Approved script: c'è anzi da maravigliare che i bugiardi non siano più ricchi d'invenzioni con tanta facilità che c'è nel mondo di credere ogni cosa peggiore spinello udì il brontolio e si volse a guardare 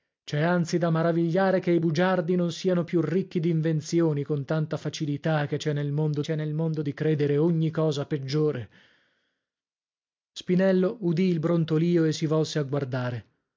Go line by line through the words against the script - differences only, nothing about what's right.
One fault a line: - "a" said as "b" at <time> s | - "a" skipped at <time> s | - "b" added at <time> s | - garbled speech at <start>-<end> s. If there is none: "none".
- "c'è nel mondo" added at 6.2 s